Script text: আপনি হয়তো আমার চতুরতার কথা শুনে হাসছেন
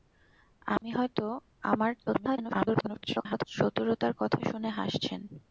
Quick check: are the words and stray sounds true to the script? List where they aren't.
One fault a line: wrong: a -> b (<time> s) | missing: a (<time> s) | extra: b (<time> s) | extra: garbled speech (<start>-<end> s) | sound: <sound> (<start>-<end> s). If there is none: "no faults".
sound: dropout (0.8-0.8 s)
extra: garbled speech (2.1-3.4 s)